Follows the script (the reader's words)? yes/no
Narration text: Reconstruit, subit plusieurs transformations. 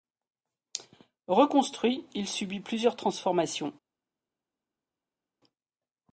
no